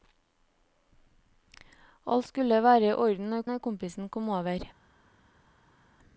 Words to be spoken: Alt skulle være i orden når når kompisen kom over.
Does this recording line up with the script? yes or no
yes